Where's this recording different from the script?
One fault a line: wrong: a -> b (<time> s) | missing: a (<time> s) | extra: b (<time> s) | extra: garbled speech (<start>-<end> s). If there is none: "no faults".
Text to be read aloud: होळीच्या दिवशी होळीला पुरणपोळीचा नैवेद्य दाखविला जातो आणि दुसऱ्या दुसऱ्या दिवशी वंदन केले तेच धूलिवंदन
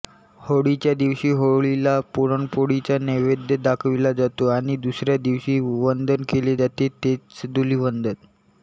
missing: दुसऱ्या (5.2 s)
extra: जाते (6.5 s)